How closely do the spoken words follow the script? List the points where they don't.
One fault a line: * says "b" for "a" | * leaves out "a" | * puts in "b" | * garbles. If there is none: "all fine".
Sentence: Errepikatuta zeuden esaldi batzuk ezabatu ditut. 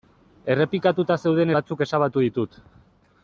* leaves out "esaldi"